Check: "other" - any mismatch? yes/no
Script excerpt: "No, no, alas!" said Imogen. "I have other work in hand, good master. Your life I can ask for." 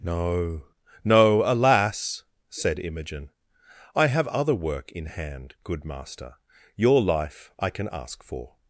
no